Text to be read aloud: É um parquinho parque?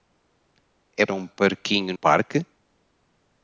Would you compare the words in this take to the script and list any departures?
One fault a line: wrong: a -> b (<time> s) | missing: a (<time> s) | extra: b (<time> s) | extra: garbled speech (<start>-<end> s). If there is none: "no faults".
no faults